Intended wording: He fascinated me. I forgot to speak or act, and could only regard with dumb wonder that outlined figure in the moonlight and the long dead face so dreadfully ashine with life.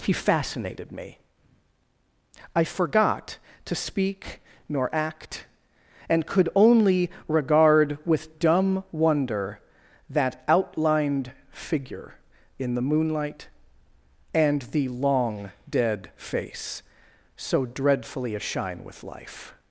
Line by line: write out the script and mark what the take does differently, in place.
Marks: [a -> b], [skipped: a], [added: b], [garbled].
He fascinated me. I forgot to speak [or -> nor] act, and could only regard with dumb wonder that outlined figure in the moonlight and the long dead face so dreadfully ashine with life.